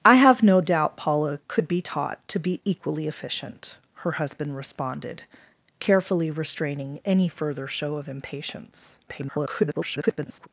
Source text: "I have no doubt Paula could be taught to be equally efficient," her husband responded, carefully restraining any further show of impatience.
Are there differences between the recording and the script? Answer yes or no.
yes